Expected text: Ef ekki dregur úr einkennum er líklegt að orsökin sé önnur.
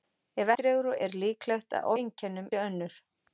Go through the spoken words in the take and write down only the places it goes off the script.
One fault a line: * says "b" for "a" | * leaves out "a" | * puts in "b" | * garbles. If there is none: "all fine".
* leaves out "ekki"
* leaves out "einkennum"
* says "einkennum" for "orsökin"